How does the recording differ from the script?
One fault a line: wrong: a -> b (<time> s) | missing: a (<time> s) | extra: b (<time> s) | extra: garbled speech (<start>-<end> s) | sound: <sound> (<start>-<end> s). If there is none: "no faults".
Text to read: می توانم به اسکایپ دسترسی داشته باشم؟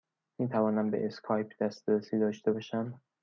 no faults